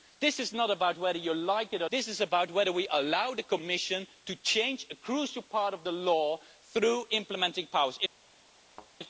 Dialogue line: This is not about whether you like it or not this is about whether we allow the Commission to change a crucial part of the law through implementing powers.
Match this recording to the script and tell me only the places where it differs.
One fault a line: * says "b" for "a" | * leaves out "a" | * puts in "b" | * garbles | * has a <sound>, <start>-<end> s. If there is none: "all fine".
* leaves out "not"
* has a thud, 8.7-8.9 s